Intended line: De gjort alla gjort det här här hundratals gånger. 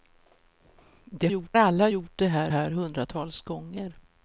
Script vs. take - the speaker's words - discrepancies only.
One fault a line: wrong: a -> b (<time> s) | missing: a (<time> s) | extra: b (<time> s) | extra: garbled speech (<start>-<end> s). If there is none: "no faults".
no faults